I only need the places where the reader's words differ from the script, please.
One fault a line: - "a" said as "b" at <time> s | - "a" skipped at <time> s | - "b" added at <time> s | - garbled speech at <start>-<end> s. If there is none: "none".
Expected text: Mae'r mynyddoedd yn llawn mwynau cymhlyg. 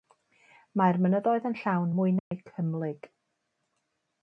none